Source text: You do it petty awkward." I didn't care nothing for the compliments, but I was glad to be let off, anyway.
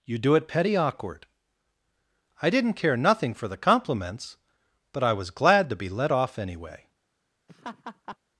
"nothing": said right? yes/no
yes